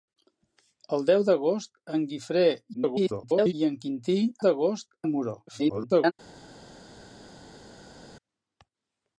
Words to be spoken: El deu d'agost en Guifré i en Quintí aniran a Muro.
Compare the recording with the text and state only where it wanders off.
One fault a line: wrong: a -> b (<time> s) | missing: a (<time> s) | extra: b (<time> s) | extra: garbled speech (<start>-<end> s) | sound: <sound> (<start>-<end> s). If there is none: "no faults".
extra: garbled speech (2.7-3.5 s)
wrong: aniran -> d'agost (4.4 s)
extra: garbled speech (5.5-6.1 s)